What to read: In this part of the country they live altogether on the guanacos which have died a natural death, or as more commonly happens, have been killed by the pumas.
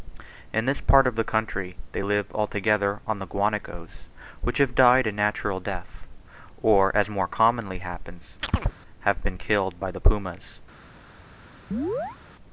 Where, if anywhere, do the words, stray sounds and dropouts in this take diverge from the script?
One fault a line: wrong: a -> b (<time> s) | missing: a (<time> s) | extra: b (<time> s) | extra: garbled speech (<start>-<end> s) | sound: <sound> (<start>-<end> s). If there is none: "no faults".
sound: chirp (8.4-8.7 s)
sound: chirp (11.7-12.2 s)